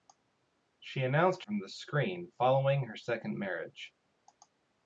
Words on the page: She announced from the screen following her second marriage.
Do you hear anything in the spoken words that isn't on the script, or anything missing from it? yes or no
no